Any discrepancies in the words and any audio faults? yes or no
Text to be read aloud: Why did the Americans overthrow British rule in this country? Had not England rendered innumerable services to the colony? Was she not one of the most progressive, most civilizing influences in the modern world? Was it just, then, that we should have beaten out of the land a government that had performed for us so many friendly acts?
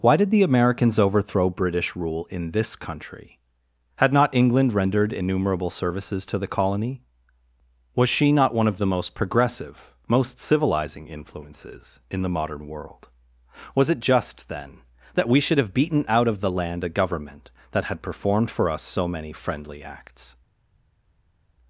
no